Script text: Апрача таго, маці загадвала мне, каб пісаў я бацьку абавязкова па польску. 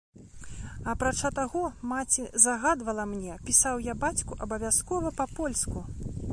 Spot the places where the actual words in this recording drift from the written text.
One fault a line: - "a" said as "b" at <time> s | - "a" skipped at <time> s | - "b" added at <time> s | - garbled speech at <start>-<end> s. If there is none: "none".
- "каб" skipped at 3.4 s